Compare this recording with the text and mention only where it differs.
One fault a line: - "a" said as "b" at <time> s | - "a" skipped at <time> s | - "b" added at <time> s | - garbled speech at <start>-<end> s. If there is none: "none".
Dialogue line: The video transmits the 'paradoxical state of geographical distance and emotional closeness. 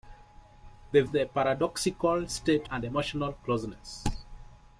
- "video transmits" skipped at 1.0 s
- "of geographical distance" skipped at 2.7 s